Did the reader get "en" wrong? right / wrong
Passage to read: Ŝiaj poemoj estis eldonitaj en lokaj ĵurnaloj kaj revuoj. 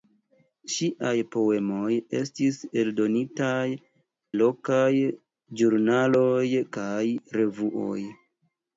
wrong